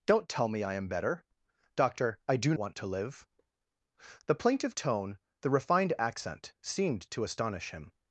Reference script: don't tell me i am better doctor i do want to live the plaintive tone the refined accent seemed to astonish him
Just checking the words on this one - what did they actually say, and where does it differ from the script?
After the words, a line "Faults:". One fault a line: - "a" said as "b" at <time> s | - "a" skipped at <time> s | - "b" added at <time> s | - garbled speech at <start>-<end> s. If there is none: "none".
don't tell me i am better doctor i do want to live the plaintive tone the refined accent seemed to astonish him
Faults:
none